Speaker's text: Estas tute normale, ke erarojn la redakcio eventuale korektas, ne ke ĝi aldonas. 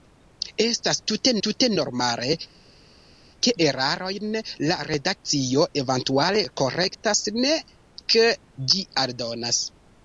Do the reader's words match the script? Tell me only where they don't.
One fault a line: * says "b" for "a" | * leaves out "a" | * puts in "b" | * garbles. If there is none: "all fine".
* puts in "tute"